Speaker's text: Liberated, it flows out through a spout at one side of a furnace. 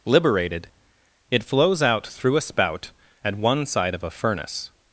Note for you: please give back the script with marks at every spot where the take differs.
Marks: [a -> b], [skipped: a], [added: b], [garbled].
Liberated, it flows out through a spout at one side of a furnace.